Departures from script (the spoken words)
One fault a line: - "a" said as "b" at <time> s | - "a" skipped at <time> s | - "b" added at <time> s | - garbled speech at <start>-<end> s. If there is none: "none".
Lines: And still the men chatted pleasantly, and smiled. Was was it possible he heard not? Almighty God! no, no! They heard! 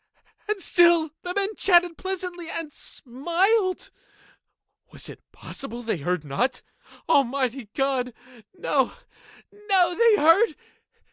- "was" skipped at 5.1 s
- "he" said as "they" at 5.8 s